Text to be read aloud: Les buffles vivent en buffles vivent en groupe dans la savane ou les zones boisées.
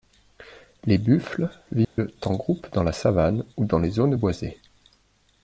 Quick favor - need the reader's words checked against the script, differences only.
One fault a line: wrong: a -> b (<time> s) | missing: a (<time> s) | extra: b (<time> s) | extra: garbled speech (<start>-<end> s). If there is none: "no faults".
missing: buffles vivent en (2.4 s)
extra: dans (3.7 s)